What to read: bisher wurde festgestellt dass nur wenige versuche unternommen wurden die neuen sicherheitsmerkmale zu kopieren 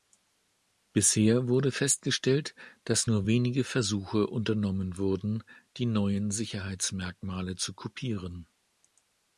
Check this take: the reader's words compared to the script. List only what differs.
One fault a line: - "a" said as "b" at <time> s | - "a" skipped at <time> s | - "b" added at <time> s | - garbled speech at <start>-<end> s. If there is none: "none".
none